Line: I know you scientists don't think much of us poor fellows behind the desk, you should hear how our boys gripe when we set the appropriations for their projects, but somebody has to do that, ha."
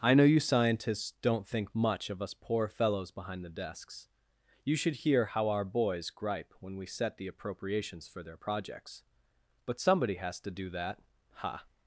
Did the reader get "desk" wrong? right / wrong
wrong